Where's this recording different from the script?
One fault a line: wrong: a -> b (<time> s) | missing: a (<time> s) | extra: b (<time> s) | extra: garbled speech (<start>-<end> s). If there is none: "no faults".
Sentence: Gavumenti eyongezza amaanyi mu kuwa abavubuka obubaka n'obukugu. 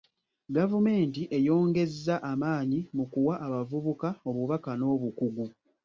no faults